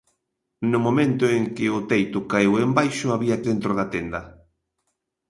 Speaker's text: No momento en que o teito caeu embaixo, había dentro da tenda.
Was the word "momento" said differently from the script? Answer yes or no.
no